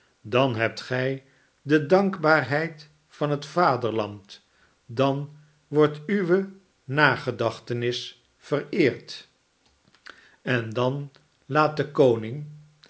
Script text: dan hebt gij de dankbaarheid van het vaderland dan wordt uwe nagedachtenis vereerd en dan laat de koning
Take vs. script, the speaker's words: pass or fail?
pass